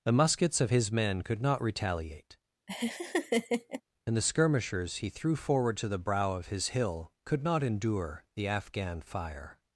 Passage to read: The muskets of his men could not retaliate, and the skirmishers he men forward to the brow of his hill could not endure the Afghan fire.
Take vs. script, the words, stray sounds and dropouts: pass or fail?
fail